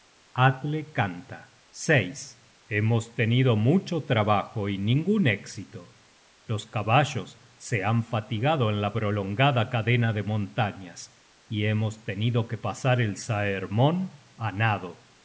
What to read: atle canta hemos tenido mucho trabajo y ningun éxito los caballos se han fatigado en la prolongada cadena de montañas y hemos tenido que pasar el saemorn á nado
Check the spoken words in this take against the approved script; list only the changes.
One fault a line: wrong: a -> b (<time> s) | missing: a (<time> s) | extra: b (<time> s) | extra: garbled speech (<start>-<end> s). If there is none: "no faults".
no faults